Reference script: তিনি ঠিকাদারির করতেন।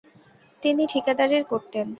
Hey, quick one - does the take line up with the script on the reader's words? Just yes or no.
yes